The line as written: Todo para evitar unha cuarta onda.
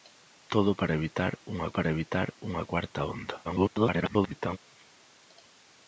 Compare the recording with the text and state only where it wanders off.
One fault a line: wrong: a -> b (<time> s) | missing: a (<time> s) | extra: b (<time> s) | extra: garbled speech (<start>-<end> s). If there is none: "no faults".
extra: para evitar unha (1.8 s)
extra: garbled speech (3.4-4.6 s)